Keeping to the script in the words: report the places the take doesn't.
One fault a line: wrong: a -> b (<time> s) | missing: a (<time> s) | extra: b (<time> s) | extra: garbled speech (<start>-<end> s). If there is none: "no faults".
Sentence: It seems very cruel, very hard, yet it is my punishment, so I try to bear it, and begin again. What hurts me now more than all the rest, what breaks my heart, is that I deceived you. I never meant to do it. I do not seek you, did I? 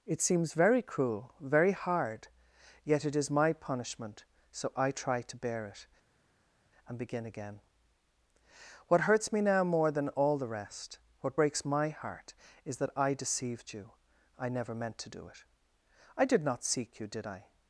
wrong: do -> did (16.2 s)